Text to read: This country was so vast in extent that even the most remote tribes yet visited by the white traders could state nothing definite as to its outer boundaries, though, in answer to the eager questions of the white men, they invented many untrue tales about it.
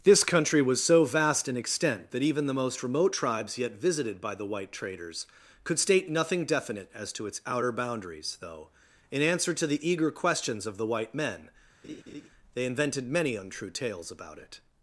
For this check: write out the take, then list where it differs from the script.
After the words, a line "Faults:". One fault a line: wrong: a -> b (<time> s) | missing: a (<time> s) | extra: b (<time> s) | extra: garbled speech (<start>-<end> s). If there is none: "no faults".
This country was so vast in extent that even the most remote tribes yet visited by the white traders could state nothing definite as to its outer boundaries, though, in answer to the eager questions of the white men, they invented many untrue tales about it.
Faults:
no faults